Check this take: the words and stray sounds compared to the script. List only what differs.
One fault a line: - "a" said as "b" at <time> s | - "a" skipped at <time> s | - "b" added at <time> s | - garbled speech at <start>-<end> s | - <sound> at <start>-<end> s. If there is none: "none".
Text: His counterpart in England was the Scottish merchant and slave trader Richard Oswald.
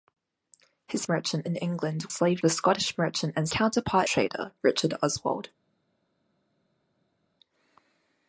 - "counterpart" said as "merchant" at 1.1 s
- "was" said as "slave" at 2.1 s
- "slave" said as "counterpart" at 3.5 s